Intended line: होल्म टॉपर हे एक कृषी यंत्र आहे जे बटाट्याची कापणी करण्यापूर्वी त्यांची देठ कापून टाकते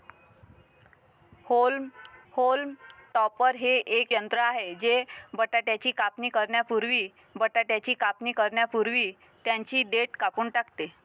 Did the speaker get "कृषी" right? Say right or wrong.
wrong